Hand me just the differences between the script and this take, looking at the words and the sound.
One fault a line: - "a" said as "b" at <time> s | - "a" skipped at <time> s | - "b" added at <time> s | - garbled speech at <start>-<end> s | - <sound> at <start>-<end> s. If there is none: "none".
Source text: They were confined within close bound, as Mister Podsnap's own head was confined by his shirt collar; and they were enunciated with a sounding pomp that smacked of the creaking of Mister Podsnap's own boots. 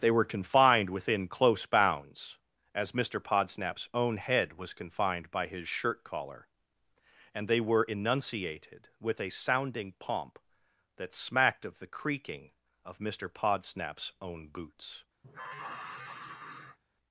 - "bound" said as "bounds" at 1.7 s
- sigh at 15.2-16.8 s